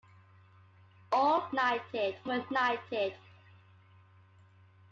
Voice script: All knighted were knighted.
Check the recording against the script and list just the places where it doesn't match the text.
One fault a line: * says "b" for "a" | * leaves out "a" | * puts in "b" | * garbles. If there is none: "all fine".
all fine